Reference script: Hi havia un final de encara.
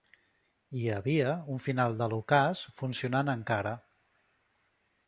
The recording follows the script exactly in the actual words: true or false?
false